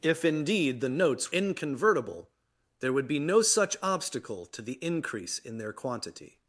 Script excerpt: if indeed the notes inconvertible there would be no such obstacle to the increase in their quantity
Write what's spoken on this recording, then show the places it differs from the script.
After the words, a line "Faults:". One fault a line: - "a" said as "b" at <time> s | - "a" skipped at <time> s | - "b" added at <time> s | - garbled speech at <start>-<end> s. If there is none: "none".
if indeed the notes inconvertible there would be no such obstacle to the increase in their quantity
Faults:
none